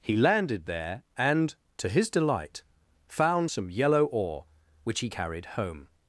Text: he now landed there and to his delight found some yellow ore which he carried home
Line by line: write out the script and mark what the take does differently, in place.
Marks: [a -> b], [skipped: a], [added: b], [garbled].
he [skipped: now] landed there and to his delight found some yellow ore which he carried home